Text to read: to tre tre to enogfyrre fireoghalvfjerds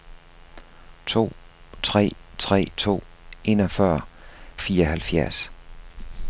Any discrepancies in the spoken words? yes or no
no